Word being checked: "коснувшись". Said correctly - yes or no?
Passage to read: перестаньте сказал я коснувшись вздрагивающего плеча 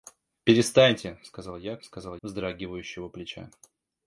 no